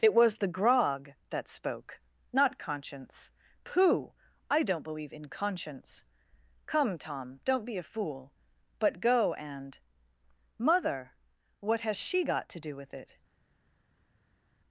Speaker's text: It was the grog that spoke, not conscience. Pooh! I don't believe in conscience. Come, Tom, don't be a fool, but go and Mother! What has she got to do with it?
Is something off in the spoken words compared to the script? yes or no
no